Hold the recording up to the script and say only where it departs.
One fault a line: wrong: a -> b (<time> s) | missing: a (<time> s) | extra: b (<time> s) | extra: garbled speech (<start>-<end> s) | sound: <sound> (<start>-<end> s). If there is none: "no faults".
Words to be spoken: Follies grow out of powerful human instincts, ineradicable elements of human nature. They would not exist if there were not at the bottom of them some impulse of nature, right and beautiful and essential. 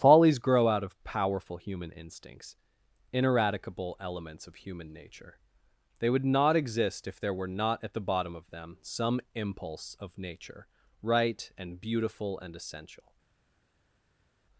no faults